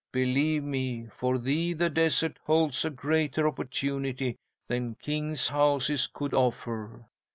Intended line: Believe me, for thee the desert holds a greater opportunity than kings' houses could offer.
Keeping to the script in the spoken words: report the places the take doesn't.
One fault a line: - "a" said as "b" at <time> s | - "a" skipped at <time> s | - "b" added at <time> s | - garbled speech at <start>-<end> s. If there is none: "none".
none